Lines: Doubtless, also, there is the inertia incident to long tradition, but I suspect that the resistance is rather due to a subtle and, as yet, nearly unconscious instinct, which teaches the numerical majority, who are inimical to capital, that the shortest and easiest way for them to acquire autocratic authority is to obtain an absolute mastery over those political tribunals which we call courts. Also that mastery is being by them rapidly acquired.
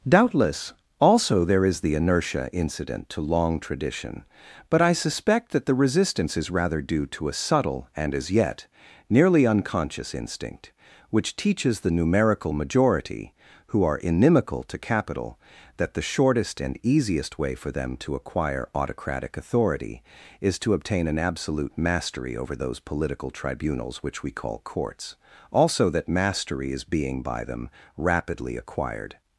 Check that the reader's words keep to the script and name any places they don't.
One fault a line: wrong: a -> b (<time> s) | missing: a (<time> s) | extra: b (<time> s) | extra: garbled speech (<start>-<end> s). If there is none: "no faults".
no faults